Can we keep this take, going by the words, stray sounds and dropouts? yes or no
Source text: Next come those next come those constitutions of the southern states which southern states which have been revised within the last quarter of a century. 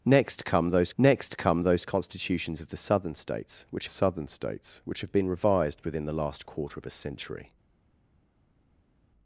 yes